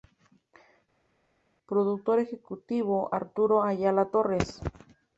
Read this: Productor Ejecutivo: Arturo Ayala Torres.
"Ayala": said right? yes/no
yes